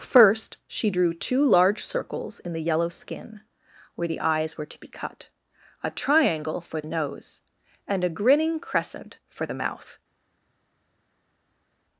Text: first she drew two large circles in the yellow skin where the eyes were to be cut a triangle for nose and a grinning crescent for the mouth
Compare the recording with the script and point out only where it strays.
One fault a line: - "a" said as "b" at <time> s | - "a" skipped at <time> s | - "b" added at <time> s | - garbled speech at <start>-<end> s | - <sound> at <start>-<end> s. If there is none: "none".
none